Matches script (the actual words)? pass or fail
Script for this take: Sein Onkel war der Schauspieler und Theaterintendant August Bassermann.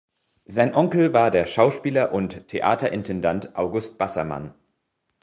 pass